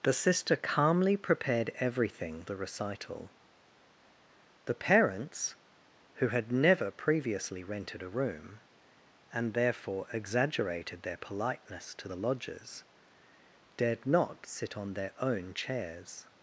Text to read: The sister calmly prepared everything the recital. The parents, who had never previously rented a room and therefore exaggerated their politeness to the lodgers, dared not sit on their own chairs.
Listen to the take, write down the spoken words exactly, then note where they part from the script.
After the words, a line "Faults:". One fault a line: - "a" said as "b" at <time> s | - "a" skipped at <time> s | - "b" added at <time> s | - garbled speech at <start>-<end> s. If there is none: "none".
The sister calmly prepared everything the recital. The parents, who had never previously rented a room and therefore exaggerated their politeness to the lodgers, dared not sit on their own chairs.
Faults:
none